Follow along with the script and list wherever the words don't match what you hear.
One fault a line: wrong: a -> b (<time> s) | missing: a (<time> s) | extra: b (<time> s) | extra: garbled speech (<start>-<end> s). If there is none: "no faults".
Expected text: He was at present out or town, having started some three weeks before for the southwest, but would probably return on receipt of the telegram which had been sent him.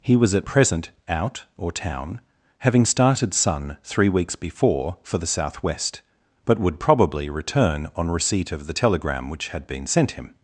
wrong: some -> sun (3.3 s)